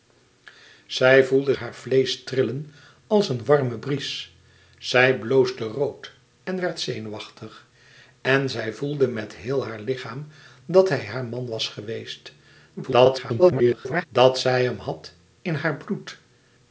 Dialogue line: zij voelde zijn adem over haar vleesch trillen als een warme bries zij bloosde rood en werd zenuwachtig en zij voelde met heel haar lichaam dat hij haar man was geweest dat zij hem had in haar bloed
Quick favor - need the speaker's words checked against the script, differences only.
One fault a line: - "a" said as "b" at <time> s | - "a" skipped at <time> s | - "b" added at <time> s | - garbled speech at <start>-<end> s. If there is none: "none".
- "zijn adem over" skipped at 1.6 s
- garbled speech at 12.8-14.1 s